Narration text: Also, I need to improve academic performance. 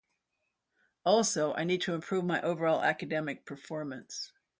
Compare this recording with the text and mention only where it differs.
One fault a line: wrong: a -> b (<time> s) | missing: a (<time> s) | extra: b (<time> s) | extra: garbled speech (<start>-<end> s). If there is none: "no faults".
extra: my overall (2.2 s)